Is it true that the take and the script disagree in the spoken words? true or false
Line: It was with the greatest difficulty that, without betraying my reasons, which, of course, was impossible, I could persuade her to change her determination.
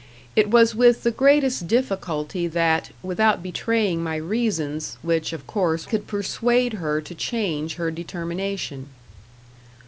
true